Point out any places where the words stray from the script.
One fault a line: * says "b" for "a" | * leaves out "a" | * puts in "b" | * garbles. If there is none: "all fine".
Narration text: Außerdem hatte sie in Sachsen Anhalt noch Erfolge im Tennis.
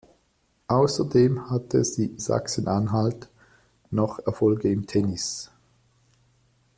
* leaves out "in"